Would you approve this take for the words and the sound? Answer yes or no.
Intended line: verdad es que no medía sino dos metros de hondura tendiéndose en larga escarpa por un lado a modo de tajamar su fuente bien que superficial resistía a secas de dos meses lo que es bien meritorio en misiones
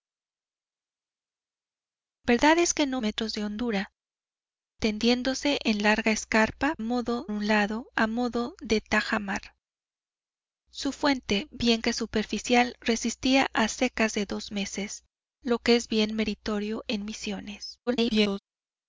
no